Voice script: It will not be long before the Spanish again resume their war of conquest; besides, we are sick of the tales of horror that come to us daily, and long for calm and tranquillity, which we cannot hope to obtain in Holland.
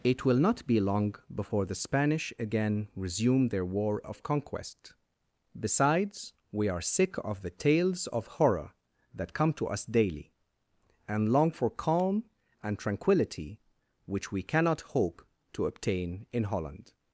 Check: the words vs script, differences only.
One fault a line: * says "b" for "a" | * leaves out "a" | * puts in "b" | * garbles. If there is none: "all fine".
all fine